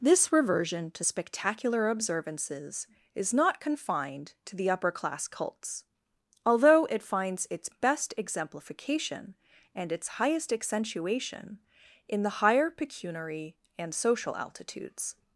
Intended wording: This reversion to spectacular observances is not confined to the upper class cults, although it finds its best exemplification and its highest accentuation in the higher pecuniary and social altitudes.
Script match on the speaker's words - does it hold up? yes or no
yes